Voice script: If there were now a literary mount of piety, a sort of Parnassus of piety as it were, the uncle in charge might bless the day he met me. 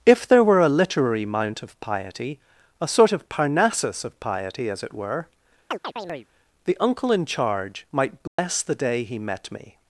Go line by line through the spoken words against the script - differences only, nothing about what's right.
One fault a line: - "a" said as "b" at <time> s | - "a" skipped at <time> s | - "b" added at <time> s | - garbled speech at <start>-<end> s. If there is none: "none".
- "now" skipped at 0.6 s